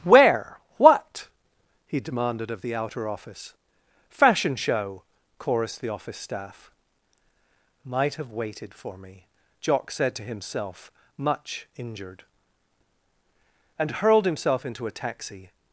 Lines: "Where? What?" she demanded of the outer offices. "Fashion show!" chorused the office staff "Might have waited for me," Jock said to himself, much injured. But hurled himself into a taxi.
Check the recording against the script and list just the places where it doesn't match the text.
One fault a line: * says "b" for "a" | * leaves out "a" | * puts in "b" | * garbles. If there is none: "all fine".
* says "he" for "she"
* says "office" for "offices"
* says "And" for "But"